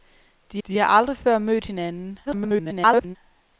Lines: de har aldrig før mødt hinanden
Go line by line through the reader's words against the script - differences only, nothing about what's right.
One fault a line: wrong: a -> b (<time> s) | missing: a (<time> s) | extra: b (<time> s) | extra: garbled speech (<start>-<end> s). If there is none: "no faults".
extra: de (0.7 s)
extra: garbled speech (2.3-3.2 s)